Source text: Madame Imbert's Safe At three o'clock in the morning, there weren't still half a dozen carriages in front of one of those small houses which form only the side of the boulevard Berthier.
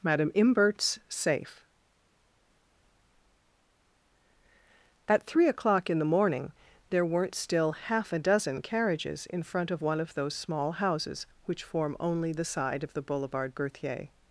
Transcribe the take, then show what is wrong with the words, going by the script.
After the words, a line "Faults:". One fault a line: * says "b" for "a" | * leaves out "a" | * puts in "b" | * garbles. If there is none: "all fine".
Madame Imbert's Safe At three o'clock in the morning, there weren't still half a dozen carriages in front of one of those small houses which form only the side of the boulevard Berthier.
Faults:
all fine